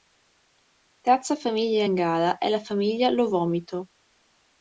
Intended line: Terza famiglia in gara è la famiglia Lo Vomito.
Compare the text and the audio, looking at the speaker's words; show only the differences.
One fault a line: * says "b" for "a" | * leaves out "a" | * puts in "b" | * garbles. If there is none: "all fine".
all fine